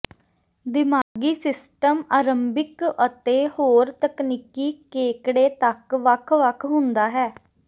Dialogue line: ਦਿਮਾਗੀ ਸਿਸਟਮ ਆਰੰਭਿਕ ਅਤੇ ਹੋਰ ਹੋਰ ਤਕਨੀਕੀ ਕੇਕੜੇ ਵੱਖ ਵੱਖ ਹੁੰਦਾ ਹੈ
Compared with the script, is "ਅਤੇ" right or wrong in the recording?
right